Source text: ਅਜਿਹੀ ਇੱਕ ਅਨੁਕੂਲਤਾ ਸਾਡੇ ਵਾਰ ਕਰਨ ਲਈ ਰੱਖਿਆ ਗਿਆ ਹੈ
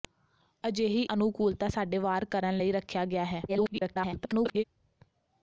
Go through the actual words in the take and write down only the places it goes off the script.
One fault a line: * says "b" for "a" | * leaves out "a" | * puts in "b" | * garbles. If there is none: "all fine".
* leaves out "ਇੱਕ"
* garbles